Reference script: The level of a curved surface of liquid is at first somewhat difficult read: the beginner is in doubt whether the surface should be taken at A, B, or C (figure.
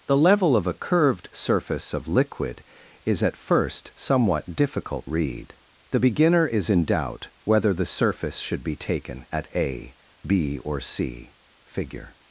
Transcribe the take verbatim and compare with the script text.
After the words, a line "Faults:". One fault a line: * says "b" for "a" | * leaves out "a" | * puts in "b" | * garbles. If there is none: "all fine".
The level of a curved surface of liquid is at first somewhat difficult read: the beginner is in doubt whether the surface should be taken at A, B, or C (figure.
Faults:
all fine